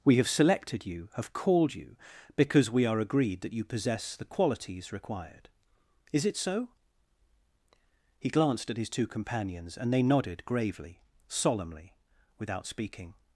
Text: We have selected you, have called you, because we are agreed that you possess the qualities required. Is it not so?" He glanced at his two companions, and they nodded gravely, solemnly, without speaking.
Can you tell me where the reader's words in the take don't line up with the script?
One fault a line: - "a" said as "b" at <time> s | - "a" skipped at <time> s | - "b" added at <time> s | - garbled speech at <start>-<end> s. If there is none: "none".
- "not" skipped at 6.3 s